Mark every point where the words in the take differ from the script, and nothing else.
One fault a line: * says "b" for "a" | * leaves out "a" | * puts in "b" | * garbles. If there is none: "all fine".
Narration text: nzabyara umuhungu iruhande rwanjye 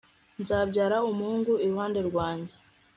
all fine